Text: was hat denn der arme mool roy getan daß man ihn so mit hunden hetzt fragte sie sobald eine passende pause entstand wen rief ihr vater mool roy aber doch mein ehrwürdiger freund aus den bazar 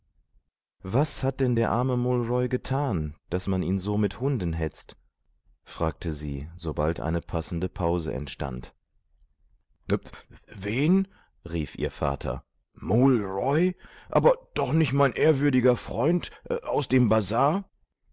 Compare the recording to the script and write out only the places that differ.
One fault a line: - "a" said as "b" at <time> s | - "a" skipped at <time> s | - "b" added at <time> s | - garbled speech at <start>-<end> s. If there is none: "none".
- "nicht" added at 14.7 s
- "den" said as "dem" at 16.9 s